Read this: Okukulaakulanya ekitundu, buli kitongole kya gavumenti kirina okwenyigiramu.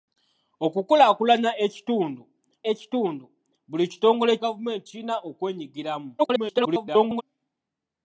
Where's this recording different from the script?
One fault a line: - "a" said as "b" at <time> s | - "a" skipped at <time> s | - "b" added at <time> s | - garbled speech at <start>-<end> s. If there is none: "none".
- "ekitundu" added at 2.7 s
- "kya" skipped at 4.3 s
- garbled speech at 6.2-7.2 s